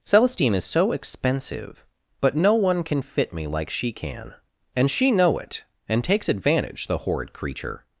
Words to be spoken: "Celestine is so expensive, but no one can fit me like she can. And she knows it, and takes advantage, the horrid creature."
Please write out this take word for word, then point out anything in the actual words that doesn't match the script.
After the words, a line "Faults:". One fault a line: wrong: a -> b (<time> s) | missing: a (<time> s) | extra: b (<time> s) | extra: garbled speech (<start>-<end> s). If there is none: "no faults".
"Celestine is so expensive, but no one can fit me like she can. And she know it, and takes advantage, the horrid creature."
Faults:
wrong: knows -> know (5.1 s)